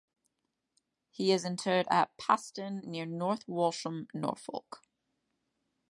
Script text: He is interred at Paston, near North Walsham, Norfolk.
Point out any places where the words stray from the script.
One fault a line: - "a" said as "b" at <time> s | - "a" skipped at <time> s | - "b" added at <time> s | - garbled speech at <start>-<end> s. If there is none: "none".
none